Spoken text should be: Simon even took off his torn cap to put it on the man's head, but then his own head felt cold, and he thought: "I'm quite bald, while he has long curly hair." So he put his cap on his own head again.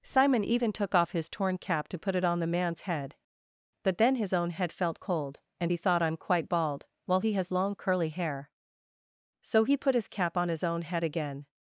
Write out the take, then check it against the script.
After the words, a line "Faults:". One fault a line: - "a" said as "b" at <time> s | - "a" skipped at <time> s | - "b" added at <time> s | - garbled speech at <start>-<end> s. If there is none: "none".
Simon even took off his torn cap to put it on the man's head, but then his own head felt cold, and he thought: "I'm quite bald, while he has long curly hair." So he put his cap on his own head again.
Faults:
none